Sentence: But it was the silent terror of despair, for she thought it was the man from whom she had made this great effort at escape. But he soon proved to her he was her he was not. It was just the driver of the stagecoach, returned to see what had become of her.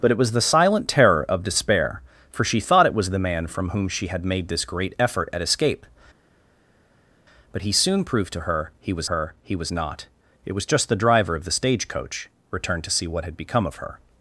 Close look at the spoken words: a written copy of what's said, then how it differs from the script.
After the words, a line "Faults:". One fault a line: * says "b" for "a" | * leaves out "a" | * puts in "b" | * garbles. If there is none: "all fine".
But it was the silent terror of despair, for she thought it was the man from whom she had made this great effort at escape. But he soon proved to her he was her he was not. It was just the driver of the stagecoach, returned to see what had become of her.
Faults:
all fine